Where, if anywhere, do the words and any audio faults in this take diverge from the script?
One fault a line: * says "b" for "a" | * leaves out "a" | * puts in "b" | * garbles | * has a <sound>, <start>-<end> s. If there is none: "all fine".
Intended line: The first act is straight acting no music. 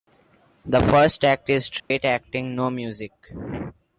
* has a dropout, 1.8-1.9 s